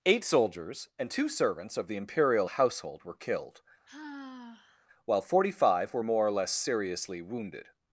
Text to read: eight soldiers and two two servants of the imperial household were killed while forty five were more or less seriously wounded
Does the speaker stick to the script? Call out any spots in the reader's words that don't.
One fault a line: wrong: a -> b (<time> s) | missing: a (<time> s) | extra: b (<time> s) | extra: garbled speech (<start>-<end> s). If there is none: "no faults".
missing: two (1.3 s)